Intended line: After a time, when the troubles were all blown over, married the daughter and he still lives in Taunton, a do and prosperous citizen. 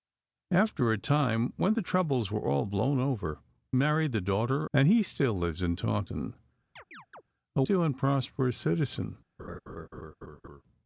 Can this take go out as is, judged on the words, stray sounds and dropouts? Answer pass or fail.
fail